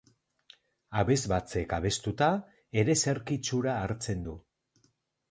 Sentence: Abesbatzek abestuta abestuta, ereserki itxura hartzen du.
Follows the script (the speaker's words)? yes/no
no